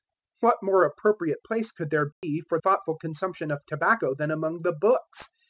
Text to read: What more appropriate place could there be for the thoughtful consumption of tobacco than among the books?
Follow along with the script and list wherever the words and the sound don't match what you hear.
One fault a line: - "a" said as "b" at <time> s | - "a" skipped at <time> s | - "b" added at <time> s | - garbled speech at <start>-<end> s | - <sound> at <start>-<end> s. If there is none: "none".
- dropout at 2.1-2.2 s
- "the" skipped at 2.6 s